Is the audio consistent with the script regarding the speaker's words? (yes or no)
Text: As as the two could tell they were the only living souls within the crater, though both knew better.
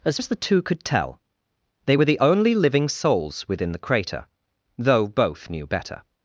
yes